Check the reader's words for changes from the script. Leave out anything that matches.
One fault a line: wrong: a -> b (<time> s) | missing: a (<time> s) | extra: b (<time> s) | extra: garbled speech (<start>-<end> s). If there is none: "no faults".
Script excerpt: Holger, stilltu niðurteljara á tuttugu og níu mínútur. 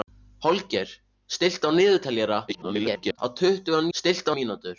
extra: garbled speech (2.5-3.2 s)
wrong: níu -> stilltu (4.0 s)